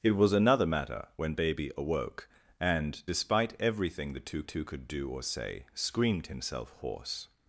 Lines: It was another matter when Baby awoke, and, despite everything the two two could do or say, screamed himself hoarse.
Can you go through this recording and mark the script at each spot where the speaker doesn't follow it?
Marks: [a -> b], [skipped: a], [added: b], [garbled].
It was another matter when Baby awoke, and, despite everything the two two could do or say, screamed himself hoarse.